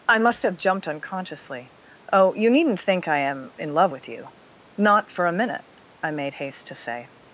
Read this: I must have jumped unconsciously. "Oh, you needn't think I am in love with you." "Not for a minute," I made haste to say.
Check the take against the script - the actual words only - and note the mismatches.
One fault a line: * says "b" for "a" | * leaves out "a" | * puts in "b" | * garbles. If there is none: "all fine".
all fine